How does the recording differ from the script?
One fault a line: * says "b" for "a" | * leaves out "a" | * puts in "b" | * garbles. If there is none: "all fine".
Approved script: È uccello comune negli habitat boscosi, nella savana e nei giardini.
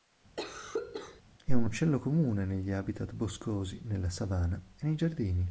* puts in "un"